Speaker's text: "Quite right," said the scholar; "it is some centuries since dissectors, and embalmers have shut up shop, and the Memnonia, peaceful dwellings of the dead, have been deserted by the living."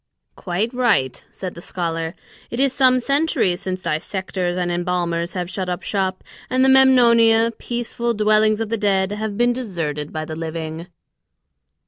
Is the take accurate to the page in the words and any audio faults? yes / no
yes